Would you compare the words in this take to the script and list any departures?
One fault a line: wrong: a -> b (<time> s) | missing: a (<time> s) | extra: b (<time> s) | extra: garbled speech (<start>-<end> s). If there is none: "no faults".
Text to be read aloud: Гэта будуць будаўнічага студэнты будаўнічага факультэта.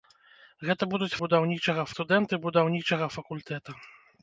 no faults